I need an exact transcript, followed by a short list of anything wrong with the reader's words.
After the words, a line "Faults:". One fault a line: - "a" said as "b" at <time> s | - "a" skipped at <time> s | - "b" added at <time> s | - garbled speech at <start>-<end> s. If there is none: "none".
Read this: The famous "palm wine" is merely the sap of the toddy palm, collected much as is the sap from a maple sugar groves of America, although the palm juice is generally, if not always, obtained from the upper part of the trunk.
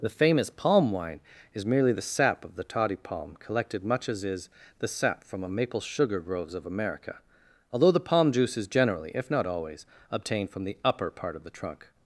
The famous "palm wine" is merely the sap of the toddy palm, collected much as is the sap from a maple sugar groves of America, although the palm juice is generally, if not always, obtained from the upper part of the trunk.
Faults:
none